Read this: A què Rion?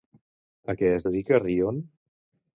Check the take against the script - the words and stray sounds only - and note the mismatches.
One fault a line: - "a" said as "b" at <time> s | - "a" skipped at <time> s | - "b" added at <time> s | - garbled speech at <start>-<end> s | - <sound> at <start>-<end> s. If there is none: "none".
- "es dedica" added at 1.0 s